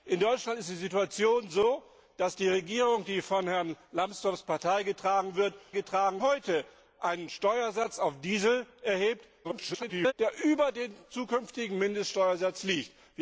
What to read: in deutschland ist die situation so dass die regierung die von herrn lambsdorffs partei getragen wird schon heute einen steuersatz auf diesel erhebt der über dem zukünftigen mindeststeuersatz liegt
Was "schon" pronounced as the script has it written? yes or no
no